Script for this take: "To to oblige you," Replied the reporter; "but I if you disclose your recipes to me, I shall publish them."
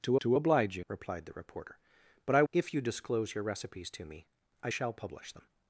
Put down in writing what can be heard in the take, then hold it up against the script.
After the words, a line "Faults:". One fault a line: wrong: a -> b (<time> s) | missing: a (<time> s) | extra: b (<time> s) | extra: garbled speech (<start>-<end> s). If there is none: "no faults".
"To to oblige you," Replied the reporter; "but I if you disclose your recipes to me, I shall publish them."
Faults:
no faults